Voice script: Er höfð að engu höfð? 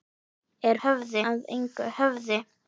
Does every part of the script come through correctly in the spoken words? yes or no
yes